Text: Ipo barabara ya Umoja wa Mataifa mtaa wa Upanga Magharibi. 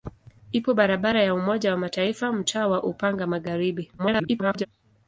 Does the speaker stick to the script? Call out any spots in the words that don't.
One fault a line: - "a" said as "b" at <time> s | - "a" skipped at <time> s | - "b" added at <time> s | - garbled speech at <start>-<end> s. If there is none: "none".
- garbled speech at 4.0-4.7 s